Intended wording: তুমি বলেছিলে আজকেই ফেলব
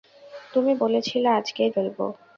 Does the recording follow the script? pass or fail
pass